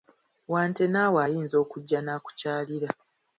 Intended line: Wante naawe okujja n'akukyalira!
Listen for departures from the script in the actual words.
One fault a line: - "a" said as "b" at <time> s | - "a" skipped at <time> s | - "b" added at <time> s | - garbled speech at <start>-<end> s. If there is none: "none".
- "ayinza" added at 1.2 s